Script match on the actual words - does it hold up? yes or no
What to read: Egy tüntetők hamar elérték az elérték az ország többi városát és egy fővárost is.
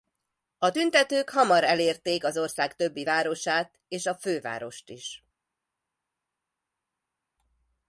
no